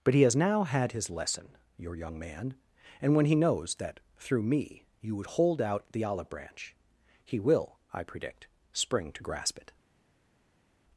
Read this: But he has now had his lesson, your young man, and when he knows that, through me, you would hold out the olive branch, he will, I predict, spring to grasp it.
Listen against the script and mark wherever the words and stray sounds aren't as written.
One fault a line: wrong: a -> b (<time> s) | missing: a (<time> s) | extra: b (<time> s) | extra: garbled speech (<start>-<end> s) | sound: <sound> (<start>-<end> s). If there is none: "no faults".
no faults